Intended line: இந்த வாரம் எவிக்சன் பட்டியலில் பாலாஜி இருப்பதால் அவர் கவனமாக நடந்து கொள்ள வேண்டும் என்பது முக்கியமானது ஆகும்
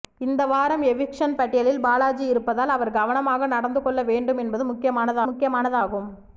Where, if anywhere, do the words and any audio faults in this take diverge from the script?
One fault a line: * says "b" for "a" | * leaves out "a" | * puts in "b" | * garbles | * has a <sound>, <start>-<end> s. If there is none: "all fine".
* puts in "முக்கியமானது"